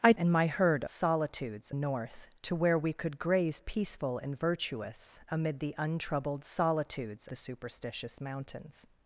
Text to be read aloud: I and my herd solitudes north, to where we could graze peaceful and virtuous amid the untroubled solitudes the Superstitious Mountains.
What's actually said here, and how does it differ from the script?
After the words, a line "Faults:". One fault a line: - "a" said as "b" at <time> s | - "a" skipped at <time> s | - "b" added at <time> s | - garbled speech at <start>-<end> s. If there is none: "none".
I and my herd solitudes north, to where we could graze peaceful and virtuous amid the untroubled solitudes the Superstitious Mountains.
Faults:
none